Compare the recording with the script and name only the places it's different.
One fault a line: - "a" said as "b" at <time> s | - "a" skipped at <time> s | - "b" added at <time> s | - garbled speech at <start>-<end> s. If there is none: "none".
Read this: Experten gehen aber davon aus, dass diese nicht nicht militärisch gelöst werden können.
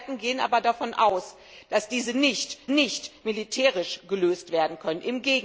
none